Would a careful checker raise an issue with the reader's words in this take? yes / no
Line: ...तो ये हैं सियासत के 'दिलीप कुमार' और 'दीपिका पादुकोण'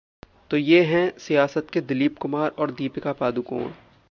no